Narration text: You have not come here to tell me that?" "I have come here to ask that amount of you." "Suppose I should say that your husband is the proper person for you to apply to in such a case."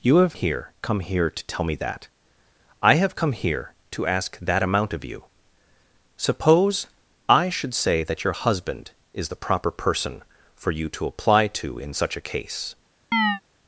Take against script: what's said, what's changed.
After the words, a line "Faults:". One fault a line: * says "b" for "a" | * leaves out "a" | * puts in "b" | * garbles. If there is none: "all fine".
You have here come here to tell me that?" "I have come here to ask that amount of you." "Suppose I should say that your husband is the proper person for you to apply to in such a case."
Faults:
* says "here" for "not"